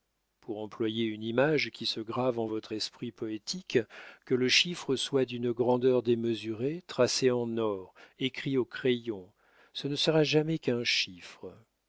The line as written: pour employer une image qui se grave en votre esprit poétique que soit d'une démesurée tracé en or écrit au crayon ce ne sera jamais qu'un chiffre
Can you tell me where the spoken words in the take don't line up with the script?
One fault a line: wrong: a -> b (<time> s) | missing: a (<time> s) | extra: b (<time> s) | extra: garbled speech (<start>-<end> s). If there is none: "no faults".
extra: le chiffre (4.3 s)
extra: grandeur (5.5 s)